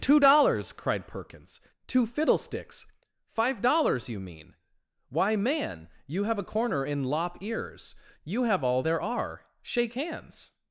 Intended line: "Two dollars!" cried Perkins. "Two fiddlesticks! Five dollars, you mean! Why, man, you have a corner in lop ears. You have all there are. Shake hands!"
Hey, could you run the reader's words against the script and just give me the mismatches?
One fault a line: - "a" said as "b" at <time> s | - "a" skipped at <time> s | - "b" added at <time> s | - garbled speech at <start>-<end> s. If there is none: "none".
none